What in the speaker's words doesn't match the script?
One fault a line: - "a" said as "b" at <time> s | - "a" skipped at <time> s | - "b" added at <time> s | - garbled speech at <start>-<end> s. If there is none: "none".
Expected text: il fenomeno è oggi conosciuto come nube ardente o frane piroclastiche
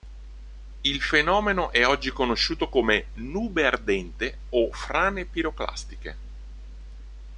none